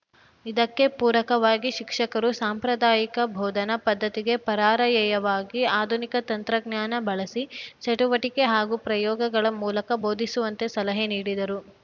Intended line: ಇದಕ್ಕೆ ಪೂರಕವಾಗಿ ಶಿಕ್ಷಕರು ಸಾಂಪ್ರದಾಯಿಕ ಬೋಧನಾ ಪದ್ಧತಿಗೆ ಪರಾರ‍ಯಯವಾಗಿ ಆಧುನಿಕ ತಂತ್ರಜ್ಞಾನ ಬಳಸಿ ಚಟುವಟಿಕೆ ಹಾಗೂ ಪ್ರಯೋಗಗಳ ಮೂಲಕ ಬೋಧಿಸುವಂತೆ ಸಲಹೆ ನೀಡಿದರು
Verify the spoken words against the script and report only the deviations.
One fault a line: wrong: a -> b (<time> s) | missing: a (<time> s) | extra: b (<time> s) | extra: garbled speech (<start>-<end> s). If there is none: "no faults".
no faults